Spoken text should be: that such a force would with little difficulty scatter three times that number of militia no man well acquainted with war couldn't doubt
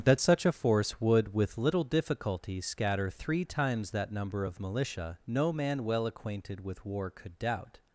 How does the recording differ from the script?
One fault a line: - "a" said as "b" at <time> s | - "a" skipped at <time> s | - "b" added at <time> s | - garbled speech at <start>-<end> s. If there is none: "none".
- "couldn't" said as "could" at 7.1 s